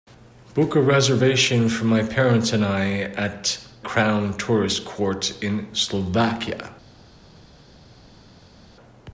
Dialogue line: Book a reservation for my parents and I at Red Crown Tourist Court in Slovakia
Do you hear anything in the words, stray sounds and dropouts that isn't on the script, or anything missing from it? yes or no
yes